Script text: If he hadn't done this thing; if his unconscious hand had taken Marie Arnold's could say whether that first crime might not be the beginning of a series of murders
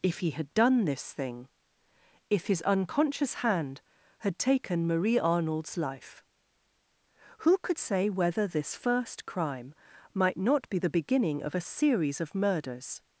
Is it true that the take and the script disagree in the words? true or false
true